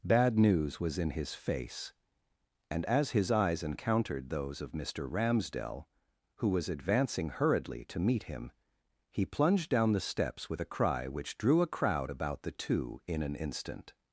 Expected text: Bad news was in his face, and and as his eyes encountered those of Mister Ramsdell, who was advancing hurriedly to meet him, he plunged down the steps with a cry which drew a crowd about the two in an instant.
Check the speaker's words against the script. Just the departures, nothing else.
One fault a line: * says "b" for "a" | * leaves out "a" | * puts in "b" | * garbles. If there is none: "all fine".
* leaves out "and"